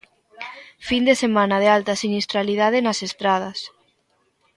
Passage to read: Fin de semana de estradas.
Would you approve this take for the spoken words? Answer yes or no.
no